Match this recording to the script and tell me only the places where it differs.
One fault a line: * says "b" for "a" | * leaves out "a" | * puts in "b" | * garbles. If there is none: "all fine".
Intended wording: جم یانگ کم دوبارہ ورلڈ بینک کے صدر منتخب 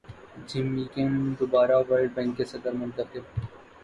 * leaves out "یانگ"